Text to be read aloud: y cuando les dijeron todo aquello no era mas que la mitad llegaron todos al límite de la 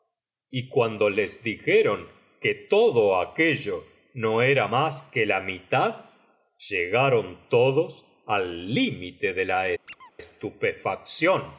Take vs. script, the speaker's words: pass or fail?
fail